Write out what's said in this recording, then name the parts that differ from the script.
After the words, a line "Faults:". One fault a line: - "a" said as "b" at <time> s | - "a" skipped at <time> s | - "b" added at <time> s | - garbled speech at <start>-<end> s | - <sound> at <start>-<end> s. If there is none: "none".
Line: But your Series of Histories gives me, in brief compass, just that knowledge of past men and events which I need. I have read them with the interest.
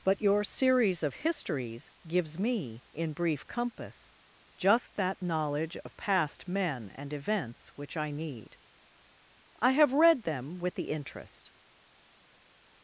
But your Series of Histories gives me, in brief compass, just that knowledge of past men and events which I need. I have read them with the interest.
Faults:
none